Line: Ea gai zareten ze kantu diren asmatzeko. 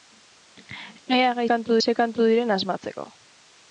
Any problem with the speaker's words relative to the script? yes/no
yes